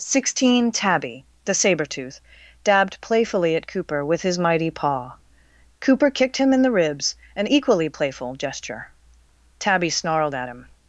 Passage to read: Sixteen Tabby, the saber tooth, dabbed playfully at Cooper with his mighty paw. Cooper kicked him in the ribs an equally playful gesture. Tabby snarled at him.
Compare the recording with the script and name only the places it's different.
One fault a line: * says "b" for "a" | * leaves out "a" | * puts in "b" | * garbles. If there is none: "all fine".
all fine